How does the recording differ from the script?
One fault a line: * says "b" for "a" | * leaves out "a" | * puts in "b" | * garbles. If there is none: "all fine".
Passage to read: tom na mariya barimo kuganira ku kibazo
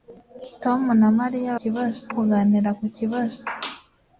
* says "kibazo" for "barimo"